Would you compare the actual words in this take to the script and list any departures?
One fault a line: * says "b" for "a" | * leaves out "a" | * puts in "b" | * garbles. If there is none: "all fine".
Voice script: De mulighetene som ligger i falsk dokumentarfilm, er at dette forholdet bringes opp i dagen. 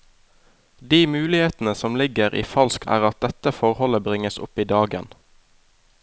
* leaves out "dokumentarfilm"